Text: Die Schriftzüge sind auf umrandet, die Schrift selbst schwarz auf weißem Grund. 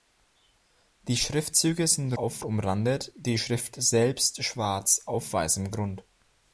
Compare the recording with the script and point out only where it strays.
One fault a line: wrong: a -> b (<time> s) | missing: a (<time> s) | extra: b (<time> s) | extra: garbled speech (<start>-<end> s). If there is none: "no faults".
no faults